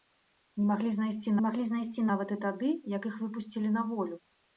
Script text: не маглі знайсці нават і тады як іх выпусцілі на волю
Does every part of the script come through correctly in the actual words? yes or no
no